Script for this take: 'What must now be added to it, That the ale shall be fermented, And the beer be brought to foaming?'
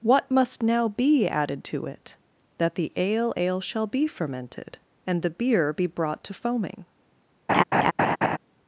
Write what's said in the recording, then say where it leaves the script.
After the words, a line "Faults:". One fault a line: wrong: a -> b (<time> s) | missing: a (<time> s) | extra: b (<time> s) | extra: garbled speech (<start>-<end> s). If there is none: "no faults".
'What must now be added to it, That the ale ale shall be fermented, And the beer be brought to foaming?'
Faults:
extra: ale (3.4 s)